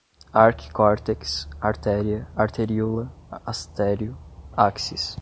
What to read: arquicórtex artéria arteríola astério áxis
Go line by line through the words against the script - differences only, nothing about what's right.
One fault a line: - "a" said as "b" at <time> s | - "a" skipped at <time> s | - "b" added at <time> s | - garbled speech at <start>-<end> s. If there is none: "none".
none